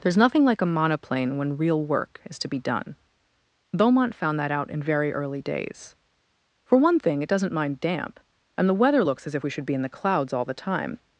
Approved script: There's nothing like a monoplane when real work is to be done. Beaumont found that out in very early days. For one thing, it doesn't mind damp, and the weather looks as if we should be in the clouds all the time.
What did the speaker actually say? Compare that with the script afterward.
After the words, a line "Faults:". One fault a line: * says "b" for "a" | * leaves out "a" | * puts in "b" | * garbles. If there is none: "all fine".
There's nothing like a monoplane when real work is to be done. Beaumont found that out in very early days. For one thing, it doesn't mind damp, and the weather looks as if we should be in the clouds all the time.
Faults:
all fine